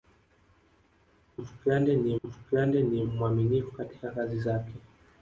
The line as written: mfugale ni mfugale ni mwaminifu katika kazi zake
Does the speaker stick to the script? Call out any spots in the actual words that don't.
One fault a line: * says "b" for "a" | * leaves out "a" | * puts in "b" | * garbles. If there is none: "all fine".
all fine